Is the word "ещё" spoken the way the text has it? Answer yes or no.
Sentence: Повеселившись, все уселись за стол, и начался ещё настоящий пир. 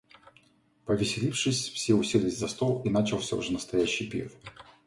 no